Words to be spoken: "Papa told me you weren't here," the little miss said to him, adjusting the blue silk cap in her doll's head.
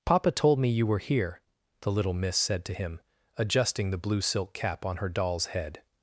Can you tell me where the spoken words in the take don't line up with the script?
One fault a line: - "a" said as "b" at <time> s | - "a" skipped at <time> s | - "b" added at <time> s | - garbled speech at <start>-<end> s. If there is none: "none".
- "weren't" said as "were" at 0.9 s
- "in" said as "on" at 4.8 s